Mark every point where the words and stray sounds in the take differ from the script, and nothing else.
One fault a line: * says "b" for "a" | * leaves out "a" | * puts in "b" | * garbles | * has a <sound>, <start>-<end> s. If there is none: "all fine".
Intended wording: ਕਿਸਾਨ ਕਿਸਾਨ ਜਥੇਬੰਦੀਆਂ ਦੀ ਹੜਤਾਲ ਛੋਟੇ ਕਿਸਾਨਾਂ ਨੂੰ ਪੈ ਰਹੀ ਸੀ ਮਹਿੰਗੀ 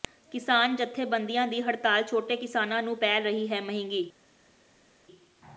* leaves out "ਕਿਸਾਨ"
* says "ਹੈ" for "ਸੀ"